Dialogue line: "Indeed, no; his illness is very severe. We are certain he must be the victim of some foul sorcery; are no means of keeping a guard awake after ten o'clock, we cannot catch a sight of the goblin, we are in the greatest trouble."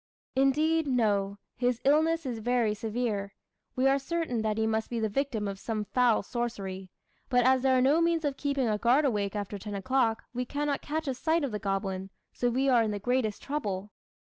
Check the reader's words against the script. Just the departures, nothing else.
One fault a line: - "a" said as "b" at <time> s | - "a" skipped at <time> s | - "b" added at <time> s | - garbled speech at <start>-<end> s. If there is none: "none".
- "that" added at 4.4 s
- "but as there" added at 7.3 s
- "so" added at 12.3 s